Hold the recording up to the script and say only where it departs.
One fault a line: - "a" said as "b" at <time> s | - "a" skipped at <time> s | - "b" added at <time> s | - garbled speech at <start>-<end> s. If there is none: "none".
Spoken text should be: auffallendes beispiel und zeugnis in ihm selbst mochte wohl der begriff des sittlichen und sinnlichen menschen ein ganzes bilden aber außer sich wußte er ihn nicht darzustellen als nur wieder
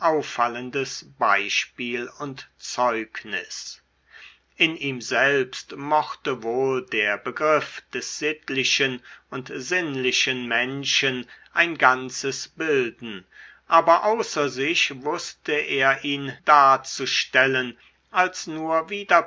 - "nicht" skipped at 16.3 s